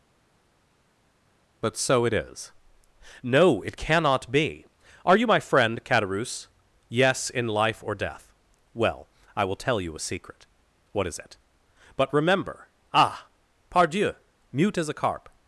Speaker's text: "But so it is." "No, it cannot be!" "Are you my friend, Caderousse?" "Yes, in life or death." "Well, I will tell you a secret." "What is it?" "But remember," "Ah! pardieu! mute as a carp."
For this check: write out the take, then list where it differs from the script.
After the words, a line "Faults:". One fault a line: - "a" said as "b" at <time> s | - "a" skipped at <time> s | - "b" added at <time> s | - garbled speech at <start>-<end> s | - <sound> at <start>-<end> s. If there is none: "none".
"But so it is." "No, it cannot be!" "Are you my friend, Caderousse?" "Yes, in life or death." "Well, I will tell you a secret." "What is it?" "But remember," "Ah! pardieu! mute as a carp."
Faults:
none